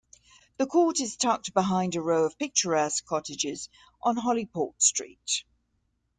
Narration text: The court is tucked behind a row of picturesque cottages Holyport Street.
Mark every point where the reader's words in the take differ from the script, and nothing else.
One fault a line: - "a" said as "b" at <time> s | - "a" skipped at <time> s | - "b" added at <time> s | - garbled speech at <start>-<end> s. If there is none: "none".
- "on" added at 4.0 s